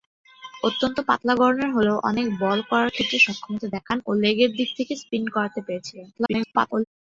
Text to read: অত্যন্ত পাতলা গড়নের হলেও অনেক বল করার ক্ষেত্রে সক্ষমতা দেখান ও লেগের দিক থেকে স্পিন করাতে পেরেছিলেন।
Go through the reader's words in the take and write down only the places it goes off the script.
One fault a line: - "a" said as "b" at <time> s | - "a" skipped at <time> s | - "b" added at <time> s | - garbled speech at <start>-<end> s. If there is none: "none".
- garbled speech at 6.1-6.8 s